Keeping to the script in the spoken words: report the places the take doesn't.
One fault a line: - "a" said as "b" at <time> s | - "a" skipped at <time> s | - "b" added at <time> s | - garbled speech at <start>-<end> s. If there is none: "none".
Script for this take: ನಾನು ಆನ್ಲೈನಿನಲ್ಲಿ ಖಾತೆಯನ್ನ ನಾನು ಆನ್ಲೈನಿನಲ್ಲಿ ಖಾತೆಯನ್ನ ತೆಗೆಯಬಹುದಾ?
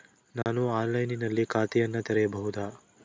- "ನಾನು ಆನ್ಲೈನಿನಲ್ಲಿ ಖಾತೆಯನ್ನ" skipped at 2.0 s